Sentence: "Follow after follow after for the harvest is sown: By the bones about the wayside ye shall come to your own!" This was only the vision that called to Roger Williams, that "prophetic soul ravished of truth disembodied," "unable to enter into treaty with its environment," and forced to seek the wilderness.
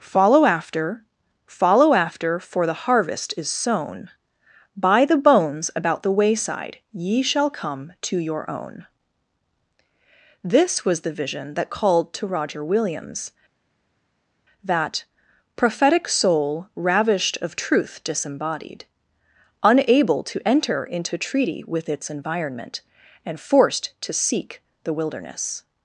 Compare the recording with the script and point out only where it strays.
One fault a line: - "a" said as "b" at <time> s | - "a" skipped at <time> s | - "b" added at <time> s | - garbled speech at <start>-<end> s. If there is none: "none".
- "only" skipped at 11.0 s